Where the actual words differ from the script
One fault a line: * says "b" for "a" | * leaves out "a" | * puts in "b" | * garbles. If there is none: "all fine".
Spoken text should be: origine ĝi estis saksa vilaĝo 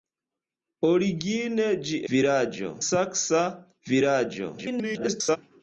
* says "vilaĝo" for "estis"
* garbles